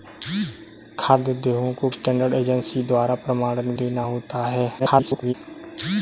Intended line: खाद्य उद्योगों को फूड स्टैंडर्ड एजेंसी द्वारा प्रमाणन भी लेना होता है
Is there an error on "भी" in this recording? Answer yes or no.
yes